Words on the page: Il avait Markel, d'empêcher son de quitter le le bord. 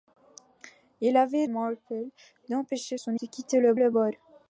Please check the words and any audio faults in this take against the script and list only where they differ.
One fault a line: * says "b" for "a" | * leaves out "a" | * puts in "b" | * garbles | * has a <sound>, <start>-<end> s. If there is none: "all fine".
all fine